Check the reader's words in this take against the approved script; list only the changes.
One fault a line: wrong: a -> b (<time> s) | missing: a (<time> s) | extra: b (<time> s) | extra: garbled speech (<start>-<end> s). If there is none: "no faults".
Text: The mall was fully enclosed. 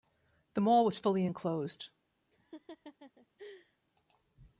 no faults